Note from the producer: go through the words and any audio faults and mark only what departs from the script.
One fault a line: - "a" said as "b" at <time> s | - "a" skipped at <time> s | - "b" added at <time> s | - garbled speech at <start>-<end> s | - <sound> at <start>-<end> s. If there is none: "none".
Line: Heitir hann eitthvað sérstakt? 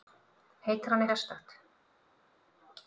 - "eitthvað" skipped at 1.1 s